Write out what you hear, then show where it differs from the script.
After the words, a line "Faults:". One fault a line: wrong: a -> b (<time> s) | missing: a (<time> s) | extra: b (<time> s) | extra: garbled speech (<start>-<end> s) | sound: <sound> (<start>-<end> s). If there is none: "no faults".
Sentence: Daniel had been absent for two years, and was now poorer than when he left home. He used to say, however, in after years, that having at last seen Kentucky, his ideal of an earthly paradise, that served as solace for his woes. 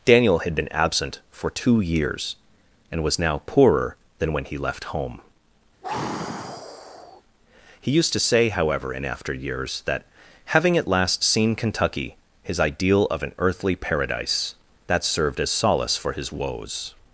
Daniel had been absent for two years, and was now poorer than when he left home. He used to say, however, in after years, that having at last seen Kentucky, his ideal of an earthly paradise, that served as solace for his woes.
Faults:
sound: sigh (5.8-7.2 s)